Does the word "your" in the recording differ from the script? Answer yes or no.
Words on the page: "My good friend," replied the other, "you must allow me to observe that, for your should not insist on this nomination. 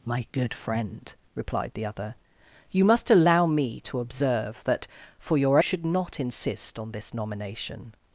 no